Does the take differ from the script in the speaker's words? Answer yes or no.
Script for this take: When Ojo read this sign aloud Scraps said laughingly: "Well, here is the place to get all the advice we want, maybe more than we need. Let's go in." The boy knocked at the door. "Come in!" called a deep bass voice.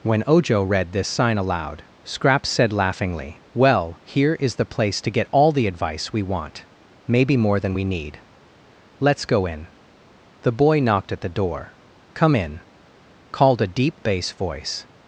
no